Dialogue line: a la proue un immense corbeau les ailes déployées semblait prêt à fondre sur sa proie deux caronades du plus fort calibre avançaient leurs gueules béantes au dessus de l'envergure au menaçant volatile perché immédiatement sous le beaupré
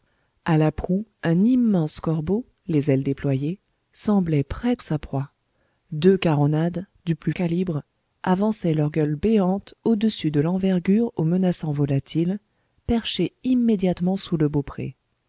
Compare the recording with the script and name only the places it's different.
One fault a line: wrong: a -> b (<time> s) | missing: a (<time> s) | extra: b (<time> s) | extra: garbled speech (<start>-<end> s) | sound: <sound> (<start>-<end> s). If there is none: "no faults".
missing: à fondre sur (4.8 s)
missing: fort (7.3 s)